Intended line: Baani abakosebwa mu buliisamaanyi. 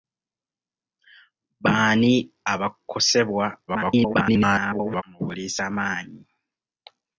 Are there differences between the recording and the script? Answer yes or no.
yes